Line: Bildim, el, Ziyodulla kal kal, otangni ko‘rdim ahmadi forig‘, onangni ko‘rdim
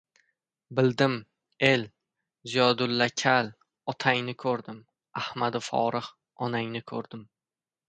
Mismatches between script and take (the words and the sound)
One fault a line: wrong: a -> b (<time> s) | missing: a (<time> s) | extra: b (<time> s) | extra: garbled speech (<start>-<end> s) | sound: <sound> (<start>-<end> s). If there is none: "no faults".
missing: kal (3.5 s)